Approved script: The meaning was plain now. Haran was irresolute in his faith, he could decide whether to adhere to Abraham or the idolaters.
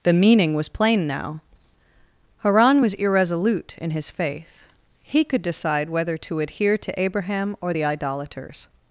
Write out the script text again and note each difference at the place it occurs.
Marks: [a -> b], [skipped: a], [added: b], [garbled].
The meaning was plain now. Haran was irresolute in his faith, he could decide whether to adhere to Abraham or the idolaters.